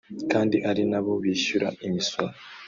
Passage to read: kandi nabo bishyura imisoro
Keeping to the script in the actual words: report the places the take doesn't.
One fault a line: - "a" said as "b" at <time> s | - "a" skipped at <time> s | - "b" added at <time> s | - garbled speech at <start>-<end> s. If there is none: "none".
- "ari" added at 0.7 s